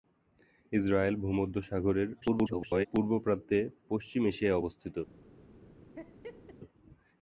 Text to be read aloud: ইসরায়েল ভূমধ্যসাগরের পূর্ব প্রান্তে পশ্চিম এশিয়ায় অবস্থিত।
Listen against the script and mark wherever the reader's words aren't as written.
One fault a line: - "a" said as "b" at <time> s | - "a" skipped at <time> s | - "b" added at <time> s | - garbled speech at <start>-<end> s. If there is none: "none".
- garbled speech at 2.2-2.9 s